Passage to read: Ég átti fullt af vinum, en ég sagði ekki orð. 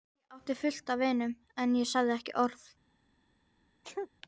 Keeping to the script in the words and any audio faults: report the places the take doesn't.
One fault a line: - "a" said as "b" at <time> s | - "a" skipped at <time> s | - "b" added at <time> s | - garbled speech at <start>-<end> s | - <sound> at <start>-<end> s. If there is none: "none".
- sneeze at 3.8-4.1 s